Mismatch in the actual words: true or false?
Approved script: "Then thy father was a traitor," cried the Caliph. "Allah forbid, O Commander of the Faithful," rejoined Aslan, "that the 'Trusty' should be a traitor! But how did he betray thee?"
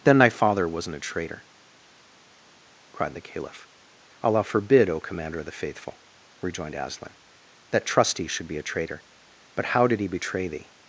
true